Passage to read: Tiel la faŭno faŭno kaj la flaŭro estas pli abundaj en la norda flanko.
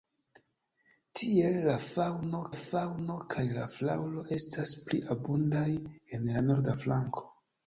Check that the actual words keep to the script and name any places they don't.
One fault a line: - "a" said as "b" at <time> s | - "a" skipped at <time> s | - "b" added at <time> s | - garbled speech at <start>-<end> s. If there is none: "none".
none